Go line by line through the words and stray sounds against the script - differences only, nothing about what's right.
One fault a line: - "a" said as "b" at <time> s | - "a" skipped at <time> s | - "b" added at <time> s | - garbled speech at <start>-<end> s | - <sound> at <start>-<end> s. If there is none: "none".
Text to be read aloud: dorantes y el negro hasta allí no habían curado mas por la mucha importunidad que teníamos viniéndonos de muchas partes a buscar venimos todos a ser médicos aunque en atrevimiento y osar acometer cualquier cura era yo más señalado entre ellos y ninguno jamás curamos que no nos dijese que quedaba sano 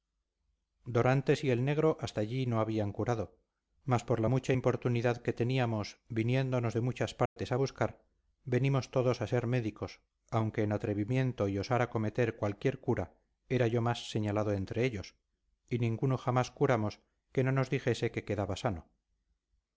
- dropout at 7.3-7.4 s